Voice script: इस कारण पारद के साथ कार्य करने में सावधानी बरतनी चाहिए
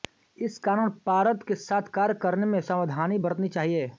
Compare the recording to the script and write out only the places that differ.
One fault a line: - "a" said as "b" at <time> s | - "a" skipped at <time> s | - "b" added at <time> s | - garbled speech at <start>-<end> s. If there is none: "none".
none